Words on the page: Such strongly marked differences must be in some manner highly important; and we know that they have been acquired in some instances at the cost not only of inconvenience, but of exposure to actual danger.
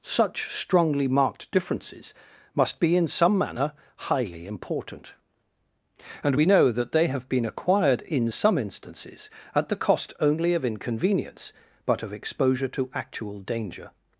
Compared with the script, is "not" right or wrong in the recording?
wrong